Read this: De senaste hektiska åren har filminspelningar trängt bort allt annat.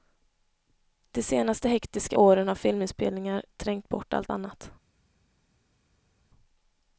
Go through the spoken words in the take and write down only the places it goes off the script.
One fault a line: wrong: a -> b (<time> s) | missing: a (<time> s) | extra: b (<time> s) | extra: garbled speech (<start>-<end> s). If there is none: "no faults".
no faults